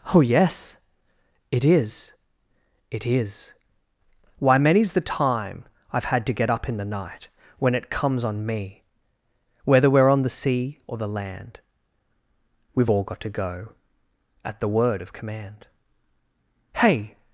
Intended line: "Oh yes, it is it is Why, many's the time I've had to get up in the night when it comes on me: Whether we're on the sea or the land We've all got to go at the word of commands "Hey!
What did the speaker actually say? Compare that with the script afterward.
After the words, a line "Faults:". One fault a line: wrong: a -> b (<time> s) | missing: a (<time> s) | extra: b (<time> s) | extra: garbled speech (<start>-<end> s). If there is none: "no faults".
"Oh yes, it is it is Why, many's the time I've had to get up in the night when it comes on me: Whether we're on the sea or the land We've all got to go at the word of command "Hey!
Faults:
wrong: commands -> command (15.1 s)